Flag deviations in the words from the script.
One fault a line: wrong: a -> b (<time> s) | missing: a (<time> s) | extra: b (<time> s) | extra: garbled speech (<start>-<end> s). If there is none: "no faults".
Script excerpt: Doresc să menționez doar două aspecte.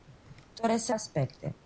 missing: menționez doar două (0.9 s)